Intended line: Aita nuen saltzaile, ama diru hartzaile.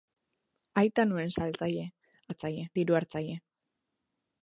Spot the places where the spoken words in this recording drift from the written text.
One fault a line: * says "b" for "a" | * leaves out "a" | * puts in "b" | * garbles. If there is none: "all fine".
* says "hartzaile" for "ama"